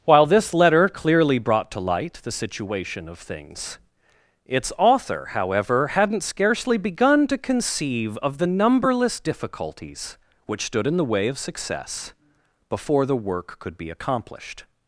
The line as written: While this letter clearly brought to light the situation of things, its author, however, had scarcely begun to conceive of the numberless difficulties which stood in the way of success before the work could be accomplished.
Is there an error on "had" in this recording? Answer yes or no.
yes